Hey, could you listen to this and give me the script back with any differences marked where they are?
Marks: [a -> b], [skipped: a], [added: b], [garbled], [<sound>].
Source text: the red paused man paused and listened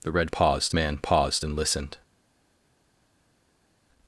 the red paused man paused and listened